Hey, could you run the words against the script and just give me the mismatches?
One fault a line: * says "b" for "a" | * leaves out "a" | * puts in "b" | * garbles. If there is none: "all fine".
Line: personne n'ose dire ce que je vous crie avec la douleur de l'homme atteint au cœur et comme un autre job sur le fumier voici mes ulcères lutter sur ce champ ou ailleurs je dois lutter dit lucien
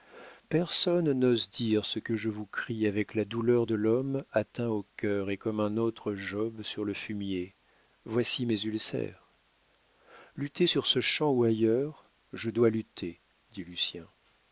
all fine